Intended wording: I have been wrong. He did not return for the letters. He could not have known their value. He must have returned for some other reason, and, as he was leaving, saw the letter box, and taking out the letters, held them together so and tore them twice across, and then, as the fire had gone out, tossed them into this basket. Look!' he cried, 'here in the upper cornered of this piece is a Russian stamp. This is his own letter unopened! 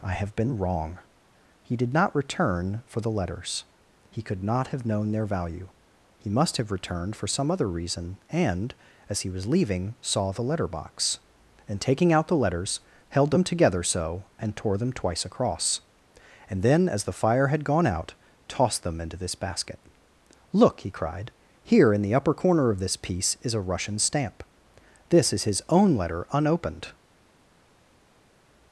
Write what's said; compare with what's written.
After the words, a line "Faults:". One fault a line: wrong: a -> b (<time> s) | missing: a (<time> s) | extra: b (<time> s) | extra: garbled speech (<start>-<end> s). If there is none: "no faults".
I have been wrong. He did not return for the letters. He could not have known their value. He must have returned for some other reason, and, as he was leaving, saw the letter box, and taking out the letters, held them together so and tore them twice across, and then, as the fire had gone out, tossed them into this basket. Look!' he cried, 'here in the upper corner of this piece is a Russian stamp. This is his own letter unopened!
Faults:
wrong: cornered -> corner (22.3 s)